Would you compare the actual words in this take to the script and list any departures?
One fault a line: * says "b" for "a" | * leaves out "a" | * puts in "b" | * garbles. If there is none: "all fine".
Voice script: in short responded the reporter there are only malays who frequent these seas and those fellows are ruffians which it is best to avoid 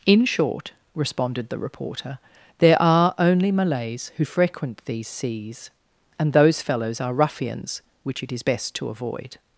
all fine